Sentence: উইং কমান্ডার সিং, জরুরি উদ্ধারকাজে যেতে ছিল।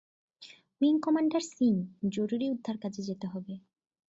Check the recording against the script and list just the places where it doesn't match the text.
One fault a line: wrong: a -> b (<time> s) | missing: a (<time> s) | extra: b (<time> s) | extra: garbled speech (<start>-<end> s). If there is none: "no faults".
wrong: ছিল -> হবে (3.3 s)